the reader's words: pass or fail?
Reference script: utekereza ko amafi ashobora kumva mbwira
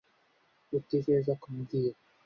fail